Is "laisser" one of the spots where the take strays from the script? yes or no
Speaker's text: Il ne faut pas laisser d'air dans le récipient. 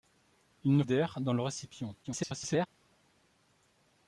yes